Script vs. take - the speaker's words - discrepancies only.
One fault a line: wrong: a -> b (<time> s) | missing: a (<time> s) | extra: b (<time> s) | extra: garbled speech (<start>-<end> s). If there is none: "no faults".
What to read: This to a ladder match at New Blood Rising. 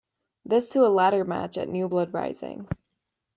no faults